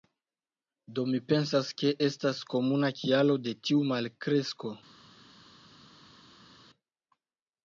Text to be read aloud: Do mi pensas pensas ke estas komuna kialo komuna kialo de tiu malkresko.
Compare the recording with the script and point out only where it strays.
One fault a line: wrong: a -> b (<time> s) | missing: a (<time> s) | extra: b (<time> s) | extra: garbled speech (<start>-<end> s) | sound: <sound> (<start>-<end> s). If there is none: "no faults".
missing: pensas (1.7 s)
missing: komuna kialo (3.4 s)